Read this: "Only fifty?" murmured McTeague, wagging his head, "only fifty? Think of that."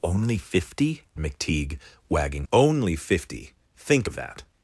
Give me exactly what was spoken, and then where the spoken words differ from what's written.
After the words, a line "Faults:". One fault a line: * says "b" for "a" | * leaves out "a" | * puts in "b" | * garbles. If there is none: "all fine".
"Only fifty?" McTeague, wagging "only fifty? Think of that."
Faults:
* leaves out "murmured"
* leaves out "his head"